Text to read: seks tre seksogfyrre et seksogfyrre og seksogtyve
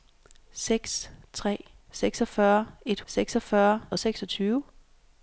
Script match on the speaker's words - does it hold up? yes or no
yes